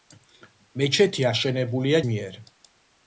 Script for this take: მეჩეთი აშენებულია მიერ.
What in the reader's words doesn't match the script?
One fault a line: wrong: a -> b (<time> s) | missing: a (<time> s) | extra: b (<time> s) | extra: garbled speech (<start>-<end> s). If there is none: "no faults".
no faults